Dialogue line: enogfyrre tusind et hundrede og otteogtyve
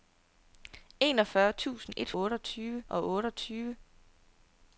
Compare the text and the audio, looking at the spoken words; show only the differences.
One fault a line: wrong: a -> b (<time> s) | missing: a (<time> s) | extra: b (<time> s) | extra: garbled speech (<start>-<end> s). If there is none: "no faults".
wrong: hundrede -> otteogtyve (2.2 s)